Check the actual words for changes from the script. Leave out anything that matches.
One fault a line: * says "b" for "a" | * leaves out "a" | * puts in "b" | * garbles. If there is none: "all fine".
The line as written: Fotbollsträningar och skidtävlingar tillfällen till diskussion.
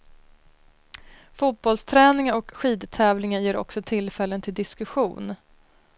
* puts in "ger också"